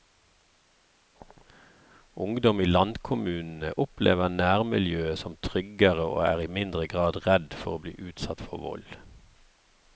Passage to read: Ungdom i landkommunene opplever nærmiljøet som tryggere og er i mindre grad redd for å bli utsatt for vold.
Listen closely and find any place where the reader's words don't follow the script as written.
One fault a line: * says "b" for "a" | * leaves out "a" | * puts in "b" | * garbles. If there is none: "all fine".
all fine